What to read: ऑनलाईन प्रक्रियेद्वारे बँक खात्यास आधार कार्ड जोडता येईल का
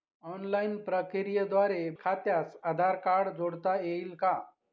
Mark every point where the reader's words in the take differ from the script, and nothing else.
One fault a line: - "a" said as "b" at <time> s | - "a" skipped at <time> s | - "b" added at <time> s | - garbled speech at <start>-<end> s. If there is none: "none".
- "बँक" skipped at 1.8 s